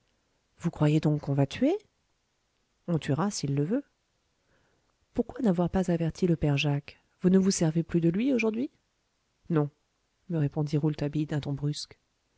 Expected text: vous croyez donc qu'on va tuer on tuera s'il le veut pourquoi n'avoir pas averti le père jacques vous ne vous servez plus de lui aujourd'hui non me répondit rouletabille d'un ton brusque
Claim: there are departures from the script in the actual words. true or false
false